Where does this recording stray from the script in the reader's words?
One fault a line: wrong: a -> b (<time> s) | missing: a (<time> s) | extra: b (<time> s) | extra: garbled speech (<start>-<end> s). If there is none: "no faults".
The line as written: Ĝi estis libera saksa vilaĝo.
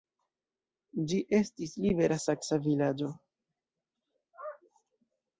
no faults